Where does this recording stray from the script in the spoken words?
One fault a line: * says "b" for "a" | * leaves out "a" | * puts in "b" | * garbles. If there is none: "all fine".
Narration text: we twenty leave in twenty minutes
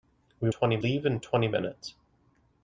all fine